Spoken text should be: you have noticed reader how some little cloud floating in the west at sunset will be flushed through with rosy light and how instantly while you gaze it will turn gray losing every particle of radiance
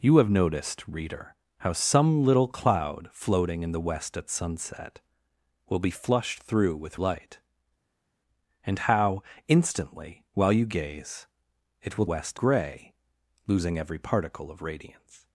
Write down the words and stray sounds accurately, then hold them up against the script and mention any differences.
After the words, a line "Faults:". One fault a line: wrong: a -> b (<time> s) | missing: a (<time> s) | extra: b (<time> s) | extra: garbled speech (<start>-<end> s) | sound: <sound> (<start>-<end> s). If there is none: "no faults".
you have noticed reader how some little cloud floating in the west at sunset will be flushed through with light and how instantly while you gaze it will west gray losing every particle of radiance
Faults:
missing: rosy (7.0 s)
wrong: turn -> west (12.1 s)